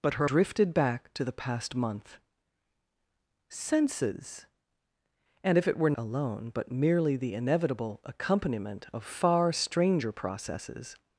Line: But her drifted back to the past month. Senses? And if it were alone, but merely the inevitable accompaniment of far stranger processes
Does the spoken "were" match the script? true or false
true